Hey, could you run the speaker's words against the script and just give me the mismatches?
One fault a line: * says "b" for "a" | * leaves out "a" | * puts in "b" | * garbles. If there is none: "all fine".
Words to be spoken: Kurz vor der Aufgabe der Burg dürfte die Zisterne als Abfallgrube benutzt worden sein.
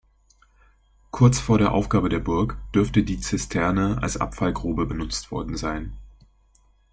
all fine